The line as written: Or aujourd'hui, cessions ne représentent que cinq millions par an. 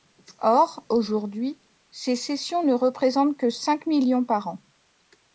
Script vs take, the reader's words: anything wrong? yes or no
yes